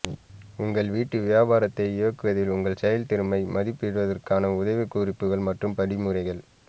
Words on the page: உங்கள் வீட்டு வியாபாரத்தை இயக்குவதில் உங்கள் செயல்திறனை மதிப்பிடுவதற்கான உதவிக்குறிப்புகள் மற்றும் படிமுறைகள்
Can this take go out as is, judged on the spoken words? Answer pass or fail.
pass